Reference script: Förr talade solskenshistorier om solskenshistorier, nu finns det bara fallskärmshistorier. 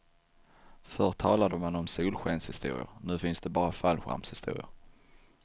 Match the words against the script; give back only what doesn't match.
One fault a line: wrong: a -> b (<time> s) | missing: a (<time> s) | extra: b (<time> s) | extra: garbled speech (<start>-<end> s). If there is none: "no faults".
wrong: solskenshistorier -> man (1.6 s)